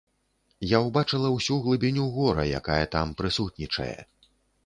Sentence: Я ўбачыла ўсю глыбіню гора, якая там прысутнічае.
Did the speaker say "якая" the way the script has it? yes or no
yes